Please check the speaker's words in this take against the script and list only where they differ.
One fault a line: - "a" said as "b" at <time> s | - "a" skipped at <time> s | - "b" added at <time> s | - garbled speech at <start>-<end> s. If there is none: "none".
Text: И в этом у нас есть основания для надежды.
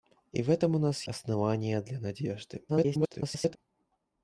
- "есть" skipped at 1.0 s
- garbled speech at 2.7-3.6 s